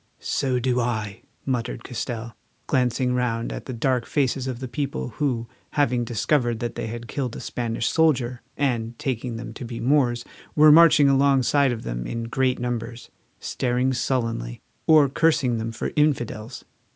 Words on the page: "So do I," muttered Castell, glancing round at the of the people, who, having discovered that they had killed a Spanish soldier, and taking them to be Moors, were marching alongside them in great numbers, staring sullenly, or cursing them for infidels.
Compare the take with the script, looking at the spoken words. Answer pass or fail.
fail